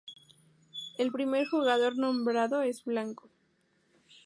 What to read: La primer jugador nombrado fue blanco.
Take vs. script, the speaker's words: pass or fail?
fail